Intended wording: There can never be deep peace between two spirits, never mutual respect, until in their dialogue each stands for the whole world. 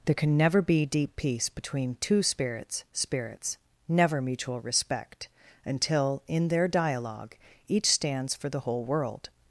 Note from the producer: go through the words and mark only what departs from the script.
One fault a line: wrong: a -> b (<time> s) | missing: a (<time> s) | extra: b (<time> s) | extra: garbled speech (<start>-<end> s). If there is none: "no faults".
extra: spirits (2.9 s)